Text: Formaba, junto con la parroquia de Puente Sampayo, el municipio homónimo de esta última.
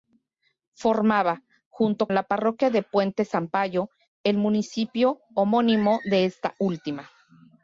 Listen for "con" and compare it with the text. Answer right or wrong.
wrong